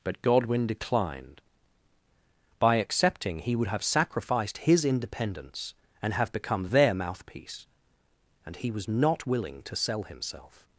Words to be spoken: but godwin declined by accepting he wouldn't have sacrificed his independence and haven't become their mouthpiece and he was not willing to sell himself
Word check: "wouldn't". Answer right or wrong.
wrong